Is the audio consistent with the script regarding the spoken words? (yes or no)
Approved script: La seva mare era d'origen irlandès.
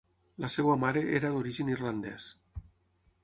yes